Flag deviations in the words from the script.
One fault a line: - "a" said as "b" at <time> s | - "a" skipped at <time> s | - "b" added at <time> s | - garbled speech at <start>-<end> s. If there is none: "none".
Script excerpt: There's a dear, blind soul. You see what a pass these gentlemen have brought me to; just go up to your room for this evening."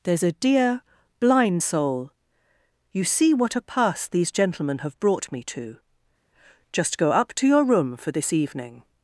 none